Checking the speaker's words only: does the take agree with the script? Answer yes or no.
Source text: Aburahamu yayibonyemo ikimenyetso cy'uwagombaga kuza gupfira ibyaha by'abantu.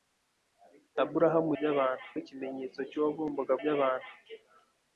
no